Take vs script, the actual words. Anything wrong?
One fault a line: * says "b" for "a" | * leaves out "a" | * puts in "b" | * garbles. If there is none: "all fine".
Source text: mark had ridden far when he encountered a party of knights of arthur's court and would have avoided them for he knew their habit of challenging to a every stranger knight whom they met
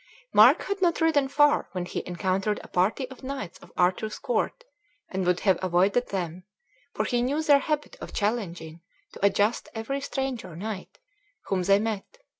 * puts in "not"
* puts in "just"